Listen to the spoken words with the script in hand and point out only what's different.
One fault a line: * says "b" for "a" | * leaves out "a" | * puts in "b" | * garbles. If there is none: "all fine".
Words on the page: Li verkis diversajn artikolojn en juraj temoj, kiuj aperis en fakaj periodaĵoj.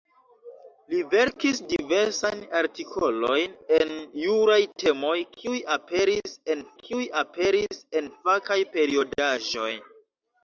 * puts in "kiuj aperis en"